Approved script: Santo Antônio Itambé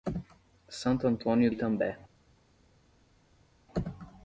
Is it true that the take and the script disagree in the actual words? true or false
false